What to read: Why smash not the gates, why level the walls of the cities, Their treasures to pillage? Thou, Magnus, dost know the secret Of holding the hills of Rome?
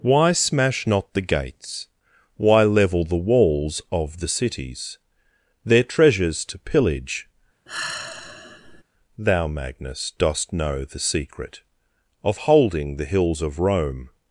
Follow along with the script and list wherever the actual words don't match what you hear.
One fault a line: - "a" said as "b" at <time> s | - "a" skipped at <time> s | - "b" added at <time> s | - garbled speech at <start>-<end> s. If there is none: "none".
none